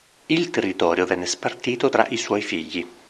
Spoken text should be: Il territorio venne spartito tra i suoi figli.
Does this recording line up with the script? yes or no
yes